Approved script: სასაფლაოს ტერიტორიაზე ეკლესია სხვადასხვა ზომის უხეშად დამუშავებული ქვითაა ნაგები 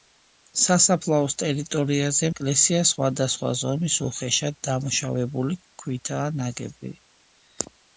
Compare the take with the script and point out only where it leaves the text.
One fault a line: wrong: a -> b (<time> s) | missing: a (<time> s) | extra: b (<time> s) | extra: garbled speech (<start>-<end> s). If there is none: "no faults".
no faults